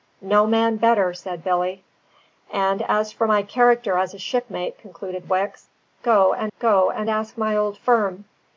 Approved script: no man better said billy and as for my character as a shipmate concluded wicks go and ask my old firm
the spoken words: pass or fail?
fail